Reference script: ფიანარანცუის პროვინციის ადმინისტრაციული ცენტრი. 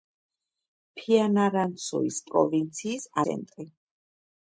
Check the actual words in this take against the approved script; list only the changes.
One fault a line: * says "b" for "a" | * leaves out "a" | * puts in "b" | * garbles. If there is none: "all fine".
* leaves out "ადმინისტრაციული"